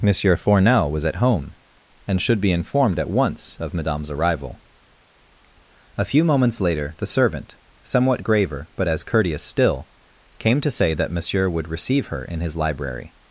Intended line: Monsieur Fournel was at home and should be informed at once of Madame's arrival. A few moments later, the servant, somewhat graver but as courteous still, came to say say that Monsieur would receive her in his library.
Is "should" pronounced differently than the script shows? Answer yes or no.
no